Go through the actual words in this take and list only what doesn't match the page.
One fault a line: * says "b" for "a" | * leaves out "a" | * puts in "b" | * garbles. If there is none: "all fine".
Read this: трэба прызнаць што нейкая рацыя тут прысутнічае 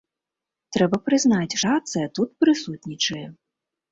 * leaves out "што нейкая"